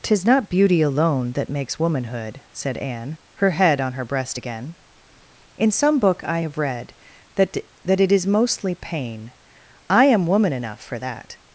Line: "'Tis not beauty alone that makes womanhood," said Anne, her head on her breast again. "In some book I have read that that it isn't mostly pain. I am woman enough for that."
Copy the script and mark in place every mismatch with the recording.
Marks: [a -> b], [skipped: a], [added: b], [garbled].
"'Tis not beauty alone that makes womanhood," said Anne, her head on her breast again. "In some book I have read that that it [isn't -> is] mostly pain. I am woman enough for that."